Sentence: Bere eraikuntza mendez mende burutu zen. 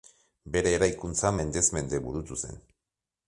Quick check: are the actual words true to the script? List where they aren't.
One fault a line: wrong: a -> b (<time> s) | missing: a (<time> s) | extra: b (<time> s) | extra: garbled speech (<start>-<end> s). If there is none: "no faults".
no faults